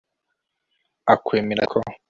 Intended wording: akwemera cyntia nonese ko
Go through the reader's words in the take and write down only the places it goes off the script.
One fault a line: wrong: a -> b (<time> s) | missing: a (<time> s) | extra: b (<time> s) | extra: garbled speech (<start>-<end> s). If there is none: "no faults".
missing: cyntia nonese (1.6 s)